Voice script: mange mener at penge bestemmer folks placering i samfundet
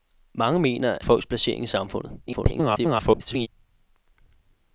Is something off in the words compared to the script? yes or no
yes